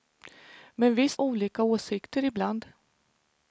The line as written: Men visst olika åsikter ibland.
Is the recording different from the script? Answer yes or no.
no